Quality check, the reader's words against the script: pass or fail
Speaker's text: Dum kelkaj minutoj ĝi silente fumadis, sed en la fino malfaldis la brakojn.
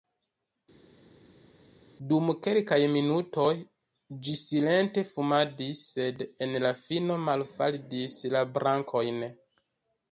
pass